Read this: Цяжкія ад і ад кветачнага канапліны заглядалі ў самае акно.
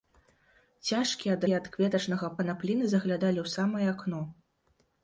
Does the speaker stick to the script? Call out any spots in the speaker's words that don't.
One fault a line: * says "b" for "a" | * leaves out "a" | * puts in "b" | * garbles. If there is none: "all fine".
all fine